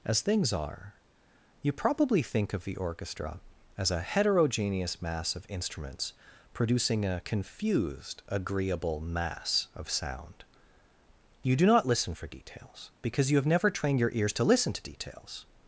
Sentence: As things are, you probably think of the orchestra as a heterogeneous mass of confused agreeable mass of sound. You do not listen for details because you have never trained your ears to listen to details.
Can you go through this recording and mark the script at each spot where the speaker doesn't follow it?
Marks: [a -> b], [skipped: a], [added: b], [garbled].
As things are, you probably think of the orchestra as a heterogeneous mass of [added: instruments producing a] confused agreeable mass of sound. You do not listen for details because you have never trained your ears to listen to details.